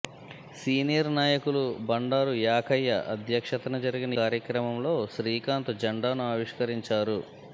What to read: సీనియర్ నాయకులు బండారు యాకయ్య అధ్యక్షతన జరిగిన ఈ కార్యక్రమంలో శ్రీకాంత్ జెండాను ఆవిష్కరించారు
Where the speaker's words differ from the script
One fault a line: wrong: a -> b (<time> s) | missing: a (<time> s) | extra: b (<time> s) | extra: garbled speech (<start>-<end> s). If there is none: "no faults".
missing: ఈ (4.2 s)